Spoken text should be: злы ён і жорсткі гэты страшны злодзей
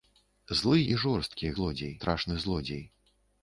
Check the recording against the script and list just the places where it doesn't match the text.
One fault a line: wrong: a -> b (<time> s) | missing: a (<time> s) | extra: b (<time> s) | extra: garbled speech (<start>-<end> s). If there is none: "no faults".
missing: ён (0.8 s)
wrong: гэты -> злодзей (1.6 s)